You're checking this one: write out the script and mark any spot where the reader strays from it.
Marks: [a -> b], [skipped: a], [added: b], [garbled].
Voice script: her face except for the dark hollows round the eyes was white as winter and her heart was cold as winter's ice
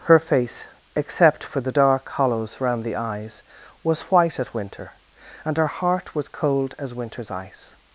her face except for the dark hollows round the eyes was white [as -> at] winter and her heart was cold as winter's ice